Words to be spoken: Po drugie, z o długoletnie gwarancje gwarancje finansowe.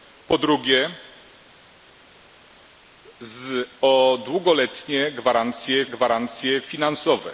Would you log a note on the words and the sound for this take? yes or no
no